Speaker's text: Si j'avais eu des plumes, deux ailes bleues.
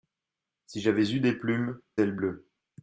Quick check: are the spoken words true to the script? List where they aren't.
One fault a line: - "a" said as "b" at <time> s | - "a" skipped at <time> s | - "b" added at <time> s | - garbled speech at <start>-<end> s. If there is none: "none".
- "deux" skipped at 1.8 s